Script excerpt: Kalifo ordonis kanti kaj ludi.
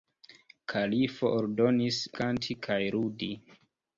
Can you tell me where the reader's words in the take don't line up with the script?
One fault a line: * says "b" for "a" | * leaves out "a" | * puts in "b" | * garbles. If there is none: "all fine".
all fine